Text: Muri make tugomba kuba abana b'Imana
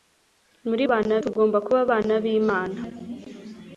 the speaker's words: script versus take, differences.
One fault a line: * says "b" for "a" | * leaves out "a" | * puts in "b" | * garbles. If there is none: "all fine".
* says "abana" for "make"